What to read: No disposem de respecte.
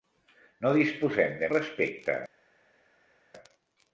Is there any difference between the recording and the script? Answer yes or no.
no